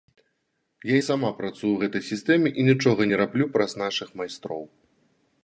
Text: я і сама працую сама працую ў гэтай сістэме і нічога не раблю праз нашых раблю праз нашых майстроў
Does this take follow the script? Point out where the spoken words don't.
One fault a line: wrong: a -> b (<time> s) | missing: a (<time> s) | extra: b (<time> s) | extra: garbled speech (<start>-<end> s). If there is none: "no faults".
missing: сама працую (1.7 s)
missing: раблю праз нашых (4.1 s)